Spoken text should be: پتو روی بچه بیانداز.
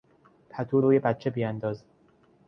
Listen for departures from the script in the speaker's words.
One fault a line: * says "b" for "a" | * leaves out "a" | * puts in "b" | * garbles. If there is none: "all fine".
all fine